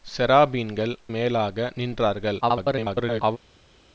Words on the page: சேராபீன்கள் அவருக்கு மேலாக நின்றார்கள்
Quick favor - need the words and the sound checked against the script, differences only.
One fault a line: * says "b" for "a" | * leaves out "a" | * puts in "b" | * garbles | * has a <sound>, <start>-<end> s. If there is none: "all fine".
* leaves out "அவருக்கு"
* garbles